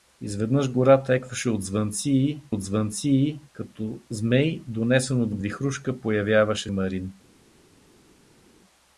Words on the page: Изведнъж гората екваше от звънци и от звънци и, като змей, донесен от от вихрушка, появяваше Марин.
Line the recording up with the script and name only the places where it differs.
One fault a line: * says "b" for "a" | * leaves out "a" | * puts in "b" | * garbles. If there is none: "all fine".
all fine